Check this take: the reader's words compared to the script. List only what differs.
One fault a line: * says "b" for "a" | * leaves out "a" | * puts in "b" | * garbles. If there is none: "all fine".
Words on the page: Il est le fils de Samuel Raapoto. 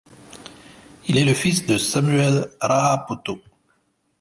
all fine